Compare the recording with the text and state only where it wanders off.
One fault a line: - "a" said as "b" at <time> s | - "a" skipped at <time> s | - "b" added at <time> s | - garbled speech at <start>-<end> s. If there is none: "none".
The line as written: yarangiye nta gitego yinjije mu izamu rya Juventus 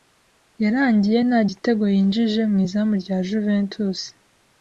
none